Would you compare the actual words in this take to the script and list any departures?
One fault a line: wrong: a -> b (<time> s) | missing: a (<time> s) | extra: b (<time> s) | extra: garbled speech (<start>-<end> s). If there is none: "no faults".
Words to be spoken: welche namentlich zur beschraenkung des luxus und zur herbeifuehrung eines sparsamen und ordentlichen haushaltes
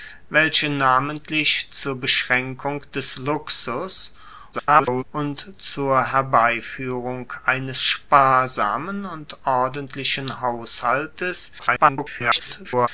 extra: garbled speech (4.5-5.0 s)
extra: garbled speech (11.6-12.9 s)